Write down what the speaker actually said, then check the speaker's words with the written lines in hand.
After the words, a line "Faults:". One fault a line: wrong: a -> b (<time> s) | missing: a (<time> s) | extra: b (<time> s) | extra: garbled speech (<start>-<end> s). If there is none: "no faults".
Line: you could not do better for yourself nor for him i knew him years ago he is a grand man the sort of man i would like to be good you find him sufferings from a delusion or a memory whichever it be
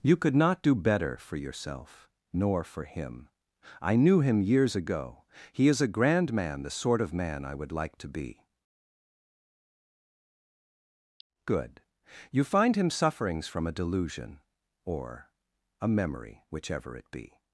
you could not do better for yourself nor for him i knew him years ago he is a grand man the sort of man i would like to be good you find him sufferings from a delusion or a memory whichever it be
Faults:
no faults